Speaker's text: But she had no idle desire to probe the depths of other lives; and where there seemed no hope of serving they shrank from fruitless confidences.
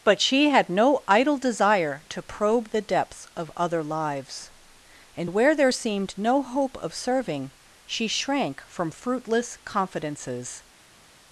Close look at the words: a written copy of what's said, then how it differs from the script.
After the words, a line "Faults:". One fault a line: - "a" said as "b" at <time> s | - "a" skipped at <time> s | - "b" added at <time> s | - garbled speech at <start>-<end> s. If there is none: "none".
But she had no idle desire to probe the depths of other lives; and where there seemed no hope of serving she shrank from fruitless confidences.
Faults:
- "they" said as "she" at 7.8 s